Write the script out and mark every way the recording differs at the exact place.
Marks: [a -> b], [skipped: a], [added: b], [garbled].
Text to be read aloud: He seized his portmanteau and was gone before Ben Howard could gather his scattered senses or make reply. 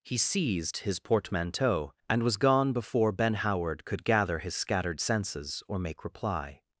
He seized his portmanteau and was gone before Ben Howard could gather his scattered senses or make reply.